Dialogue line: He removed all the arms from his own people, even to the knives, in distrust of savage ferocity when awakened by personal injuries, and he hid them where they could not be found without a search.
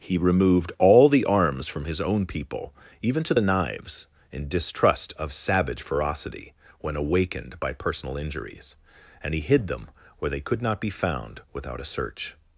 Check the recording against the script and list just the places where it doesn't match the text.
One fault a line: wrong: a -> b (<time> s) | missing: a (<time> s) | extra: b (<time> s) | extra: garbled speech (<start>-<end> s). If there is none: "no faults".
no faults